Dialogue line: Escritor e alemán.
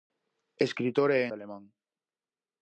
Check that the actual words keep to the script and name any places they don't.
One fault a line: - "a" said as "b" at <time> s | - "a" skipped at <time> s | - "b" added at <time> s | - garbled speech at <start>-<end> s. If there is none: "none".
none